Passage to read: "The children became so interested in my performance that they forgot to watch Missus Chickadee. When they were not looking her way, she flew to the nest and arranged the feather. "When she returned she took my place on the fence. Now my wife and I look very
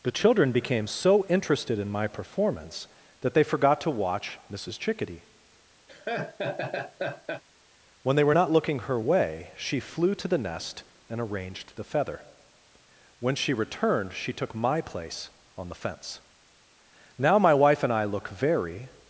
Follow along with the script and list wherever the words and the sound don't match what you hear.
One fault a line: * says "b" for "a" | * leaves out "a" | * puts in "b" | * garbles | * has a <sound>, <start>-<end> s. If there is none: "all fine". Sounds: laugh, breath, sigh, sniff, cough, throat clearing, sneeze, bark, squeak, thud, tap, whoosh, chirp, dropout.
* has a laugh, 5.9-7.4 s